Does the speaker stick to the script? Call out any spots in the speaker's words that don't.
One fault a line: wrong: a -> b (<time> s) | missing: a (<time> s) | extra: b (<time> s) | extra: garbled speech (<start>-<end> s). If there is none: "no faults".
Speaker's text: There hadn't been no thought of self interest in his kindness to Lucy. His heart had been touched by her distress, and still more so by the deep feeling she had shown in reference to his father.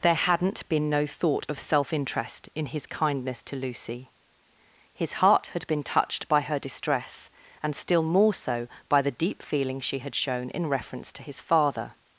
no faults